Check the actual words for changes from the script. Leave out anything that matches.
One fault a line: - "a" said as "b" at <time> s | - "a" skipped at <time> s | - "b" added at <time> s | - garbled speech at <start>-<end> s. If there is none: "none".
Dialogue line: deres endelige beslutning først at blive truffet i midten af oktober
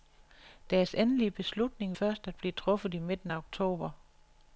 none